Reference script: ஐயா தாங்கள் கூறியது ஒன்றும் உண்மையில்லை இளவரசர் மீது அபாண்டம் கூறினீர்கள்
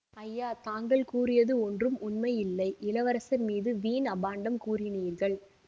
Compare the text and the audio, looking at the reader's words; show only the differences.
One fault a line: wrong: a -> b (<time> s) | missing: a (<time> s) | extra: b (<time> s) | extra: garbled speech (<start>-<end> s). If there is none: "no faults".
extra: வீண் (3.8 s)